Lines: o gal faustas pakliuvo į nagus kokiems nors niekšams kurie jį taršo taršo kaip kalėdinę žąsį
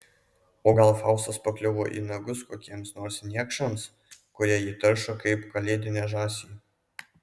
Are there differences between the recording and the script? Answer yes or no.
yes